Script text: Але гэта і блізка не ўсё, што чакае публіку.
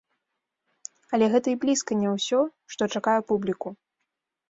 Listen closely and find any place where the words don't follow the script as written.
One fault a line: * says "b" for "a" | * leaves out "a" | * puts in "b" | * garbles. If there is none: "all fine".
all fine